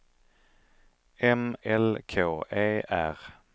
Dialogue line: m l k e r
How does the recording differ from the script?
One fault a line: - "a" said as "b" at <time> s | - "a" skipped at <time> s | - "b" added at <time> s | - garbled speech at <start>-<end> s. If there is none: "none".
none